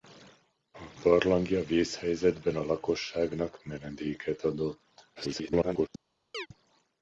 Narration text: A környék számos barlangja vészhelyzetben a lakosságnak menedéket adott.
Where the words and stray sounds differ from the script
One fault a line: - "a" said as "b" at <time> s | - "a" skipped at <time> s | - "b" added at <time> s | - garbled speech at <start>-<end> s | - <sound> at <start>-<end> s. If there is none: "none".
- "környék számos" skipped at 0.9 s
- garbled speech at 5.2-5.9 s
- chirp at 6.3-6.5 s